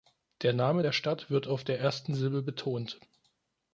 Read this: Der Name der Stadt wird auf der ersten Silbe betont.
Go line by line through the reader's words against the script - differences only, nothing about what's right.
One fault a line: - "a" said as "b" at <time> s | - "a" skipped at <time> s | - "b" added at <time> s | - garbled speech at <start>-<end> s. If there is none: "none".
none